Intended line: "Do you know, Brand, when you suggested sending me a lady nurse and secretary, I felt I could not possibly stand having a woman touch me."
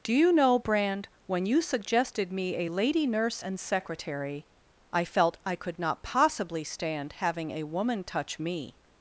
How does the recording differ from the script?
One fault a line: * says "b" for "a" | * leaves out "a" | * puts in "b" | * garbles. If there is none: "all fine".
* leaves out "sending"